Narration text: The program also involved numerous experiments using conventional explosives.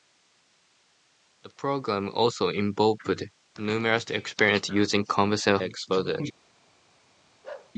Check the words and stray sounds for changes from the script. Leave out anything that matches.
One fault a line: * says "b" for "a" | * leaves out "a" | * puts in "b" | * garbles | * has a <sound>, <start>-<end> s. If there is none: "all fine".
* has a bark, 7.4-7.7 s